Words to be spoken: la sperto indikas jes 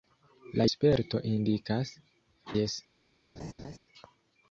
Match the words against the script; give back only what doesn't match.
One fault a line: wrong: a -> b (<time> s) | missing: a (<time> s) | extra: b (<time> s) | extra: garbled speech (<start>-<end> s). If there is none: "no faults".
no faults